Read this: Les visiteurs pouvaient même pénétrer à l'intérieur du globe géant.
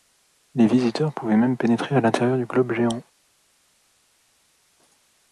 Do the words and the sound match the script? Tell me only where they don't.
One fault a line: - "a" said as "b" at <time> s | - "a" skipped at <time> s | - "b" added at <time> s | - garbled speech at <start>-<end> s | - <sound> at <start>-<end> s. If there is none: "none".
none